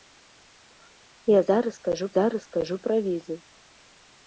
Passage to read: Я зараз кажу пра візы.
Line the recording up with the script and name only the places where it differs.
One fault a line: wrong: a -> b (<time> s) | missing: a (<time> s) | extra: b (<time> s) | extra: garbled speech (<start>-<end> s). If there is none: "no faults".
extra: зараз кажу (2.2 s)